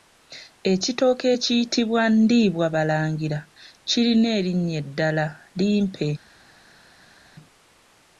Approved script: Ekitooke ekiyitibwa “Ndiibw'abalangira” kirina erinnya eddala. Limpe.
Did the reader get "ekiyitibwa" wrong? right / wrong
right